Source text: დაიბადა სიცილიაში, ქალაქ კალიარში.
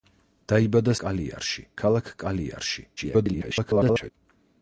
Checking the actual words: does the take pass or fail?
fail